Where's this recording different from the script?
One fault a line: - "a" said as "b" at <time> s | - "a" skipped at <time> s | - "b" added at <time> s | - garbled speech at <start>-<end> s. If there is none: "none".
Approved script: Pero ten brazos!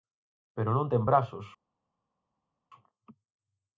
- "non" added at 0.8 s